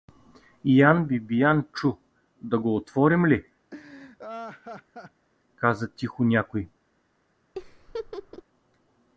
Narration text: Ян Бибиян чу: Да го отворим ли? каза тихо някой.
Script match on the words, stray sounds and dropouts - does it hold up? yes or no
no